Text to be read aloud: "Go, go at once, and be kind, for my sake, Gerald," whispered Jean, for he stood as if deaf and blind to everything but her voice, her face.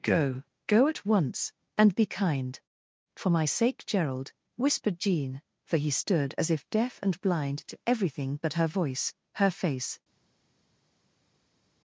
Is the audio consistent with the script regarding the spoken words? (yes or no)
yes